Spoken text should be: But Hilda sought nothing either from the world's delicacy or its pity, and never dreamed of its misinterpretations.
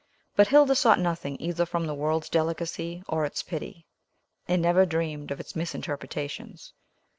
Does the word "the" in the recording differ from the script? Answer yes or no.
no